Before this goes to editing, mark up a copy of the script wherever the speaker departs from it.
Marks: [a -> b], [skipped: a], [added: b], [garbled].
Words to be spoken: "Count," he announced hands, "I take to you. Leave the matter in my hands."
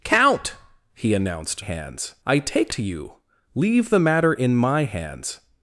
"Count," he announced hands, "I take to you. Leave the matter in my hands."